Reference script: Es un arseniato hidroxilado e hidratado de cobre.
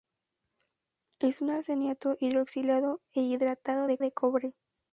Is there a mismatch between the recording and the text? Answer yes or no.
yes